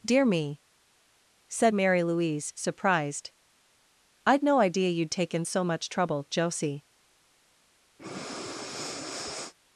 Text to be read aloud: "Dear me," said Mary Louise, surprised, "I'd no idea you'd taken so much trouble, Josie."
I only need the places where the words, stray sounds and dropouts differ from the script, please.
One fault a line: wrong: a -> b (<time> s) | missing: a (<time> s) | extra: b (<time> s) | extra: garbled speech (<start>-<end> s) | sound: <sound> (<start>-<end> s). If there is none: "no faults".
sound: breath (8.0-9.5 s)